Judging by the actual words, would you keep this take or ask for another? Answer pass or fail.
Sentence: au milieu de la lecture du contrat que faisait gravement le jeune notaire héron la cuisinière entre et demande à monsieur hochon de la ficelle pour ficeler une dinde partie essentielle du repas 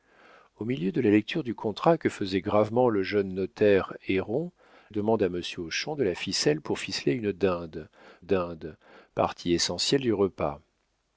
fail